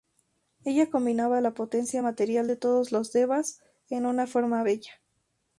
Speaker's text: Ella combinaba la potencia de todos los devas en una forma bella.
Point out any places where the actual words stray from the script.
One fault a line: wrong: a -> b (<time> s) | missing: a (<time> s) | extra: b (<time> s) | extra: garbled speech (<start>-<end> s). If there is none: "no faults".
extra: material (2.0 s)